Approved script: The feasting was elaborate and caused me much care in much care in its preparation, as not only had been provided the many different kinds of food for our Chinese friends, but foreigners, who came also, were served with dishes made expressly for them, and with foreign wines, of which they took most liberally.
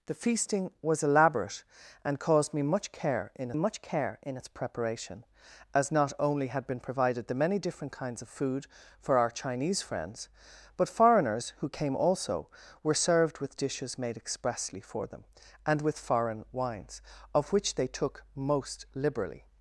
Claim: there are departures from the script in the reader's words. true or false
false